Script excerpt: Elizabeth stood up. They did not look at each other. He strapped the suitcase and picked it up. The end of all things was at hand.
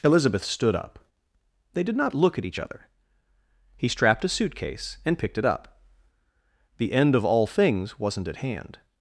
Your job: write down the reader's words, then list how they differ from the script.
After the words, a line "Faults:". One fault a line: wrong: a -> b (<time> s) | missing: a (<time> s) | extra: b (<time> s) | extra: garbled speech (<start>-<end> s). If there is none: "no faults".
Elizabeth stood up. They did not look at each other. He strapped a suitcase and picked it up. The end of all things wasn't at hand.
Faults:
wrong: the -> a (4.2 s)
wrong: was -> wasn't (8.0 s)